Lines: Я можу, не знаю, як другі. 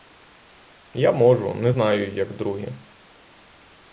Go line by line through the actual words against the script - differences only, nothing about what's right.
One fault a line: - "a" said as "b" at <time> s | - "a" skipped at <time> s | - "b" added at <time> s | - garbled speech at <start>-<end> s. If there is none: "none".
none